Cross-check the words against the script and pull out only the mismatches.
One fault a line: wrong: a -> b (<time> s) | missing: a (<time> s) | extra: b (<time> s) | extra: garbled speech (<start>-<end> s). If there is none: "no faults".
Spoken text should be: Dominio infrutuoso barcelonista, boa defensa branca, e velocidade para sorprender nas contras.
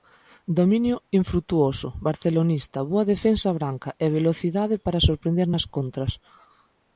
no faults